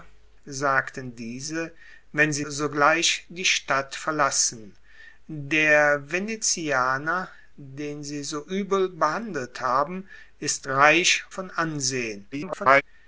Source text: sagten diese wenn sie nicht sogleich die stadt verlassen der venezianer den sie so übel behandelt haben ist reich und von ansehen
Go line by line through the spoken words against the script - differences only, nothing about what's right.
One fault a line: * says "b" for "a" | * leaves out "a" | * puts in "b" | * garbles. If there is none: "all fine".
* leaves out "nicht"
* leaves out "und"
* garbles